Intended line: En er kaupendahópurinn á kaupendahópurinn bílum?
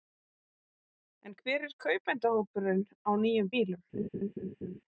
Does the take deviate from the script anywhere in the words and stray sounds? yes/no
yes